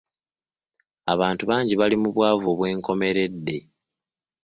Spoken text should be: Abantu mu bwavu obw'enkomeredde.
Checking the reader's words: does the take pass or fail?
fail